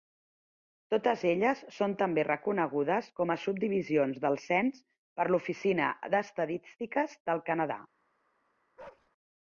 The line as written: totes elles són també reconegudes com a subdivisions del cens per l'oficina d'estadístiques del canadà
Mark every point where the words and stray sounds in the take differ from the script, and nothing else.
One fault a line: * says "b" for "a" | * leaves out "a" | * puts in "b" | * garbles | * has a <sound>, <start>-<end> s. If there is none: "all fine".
* has a bark, 8.8-9.1 s